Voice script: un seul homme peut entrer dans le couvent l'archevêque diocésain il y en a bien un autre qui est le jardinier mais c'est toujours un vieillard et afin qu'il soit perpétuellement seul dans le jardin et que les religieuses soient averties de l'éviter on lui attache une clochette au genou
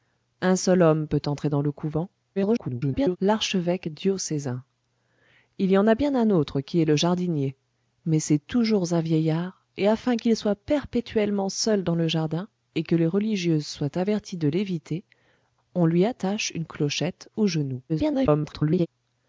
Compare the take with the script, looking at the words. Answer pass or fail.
fail